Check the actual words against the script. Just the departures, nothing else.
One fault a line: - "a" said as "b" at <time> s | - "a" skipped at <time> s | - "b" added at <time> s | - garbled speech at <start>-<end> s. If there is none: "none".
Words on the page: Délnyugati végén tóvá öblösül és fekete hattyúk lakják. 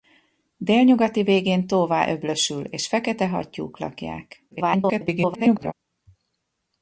- garbled speech at 4.5-5.7 s